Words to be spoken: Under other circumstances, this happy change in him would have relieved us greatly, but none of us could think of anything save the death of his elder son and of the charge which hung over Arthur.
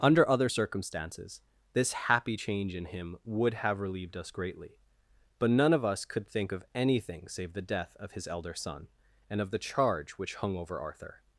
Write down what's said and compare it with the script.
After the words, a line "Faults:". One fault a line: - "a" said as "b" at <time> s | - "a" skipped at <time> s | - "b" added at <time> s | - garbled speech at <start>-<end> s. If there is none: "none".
Under other circumstances, this happy change in him would have relieved us greatly, but none of us could think of anything save the death of his elder son and of the charge which hung over Arthur.
Faults:
none